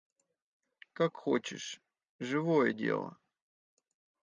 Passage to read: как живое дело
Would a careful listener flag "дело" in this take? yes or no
no